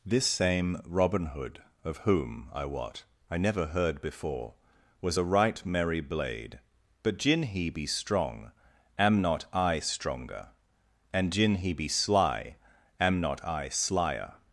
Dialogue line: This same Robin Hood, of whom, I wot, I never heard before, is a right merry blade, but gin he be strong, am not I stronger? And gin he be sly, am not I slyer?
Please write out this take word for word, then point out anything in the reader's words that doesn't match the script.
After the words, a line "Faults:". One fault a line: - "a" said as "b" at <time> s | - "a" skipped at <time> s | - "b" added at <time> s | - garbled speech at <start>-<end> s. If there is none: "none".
This same Robin Hood, of whom, I wot, I never heard before, was a right merry blade, but gin he be strong, am not I stronger? And gin he be sly, am not I slyer?
Faults:
- "is" said as "was" at 5.0 s